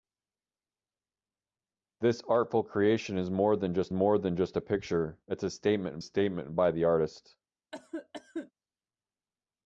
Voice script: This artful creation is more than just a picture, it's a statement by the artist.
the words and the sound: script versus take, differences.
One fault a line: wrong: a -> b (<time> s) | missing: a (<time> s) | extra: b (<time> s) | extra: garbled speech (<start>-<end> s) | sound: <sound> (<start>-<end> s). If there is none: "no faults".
extra: more than just (3.9 s)
extra: statement (6.0 s)
sound: cough (7.7-8.5 s)